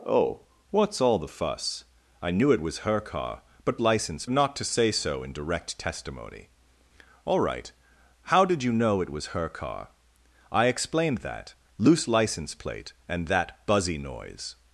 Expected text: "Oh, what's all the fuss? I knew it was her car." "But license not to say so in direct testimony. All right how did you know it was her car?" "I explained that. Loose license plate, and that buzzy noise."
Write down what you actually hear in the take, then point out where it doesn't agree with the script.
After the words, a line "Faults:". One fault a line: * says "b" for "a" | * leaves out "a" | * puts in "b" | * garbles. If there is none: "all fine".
"Oh, what's all the fuss? I knew it was her car." "But license not to say so in direct testimony. All right how did you know it was her car?" "I explained that. Loose license plate, and that buzzy noise."
Faults:
all fine